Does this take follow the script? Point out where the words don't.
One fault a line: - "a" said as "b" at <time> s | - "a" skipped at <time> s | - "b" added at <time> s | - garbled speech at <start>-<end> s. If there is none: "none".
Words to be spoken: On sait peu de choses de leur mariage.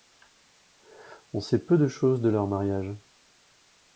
none